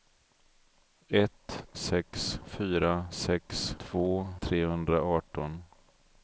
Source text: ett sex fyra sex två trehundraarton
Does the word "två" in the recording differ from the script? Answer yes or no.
no